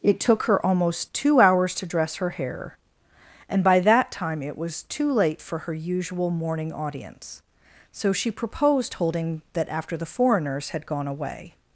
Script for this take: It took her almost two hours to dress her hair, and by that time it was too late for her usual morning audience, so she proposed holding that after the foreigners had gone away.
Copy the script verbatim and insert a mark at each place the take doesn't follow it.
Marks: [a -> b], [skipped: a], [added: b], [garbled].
It took her almost two hours to dress her hair, and by that time it was too late for her usual morning audience, so she proposed holding that after the foreigners had gone away.